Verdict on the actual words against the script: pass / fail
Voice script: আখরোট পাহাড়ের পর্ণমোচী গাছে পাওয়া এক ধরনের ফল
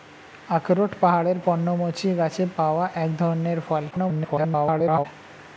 fail